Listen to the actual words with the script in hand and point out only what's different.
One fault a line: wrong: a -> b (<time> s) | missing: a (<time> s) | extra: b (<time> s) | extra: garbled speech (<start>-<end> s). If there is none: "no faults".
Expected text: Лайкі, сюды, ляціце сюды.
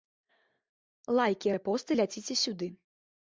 wrong: сюды -> рэпосты (1.5 s)